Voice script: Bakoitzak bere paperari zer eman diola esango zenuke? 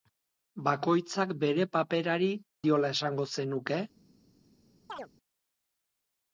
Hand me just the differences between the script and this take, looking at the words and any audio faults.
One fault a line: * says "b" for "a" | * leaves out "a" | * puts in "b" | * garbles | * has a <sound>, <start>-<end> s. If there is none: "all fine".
* leaves out "zer eman"
* has a chirp, 4.9-5.1 s